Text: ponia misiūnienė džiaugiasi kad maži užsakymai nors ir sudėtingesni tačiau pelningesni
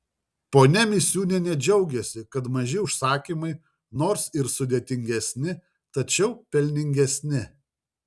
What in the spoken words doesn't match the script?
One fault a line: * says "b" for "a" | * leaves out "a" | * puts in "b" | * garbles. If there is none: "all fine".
all fine